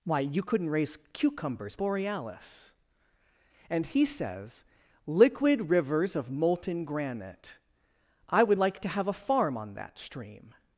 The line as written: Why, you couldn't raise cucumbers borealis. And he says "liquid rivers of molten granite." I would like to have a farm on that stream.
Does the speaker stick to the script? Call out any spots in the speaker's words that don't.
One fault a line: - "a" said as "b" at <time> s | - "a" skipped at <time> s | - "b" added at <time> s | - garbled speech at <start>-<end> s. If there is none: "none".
none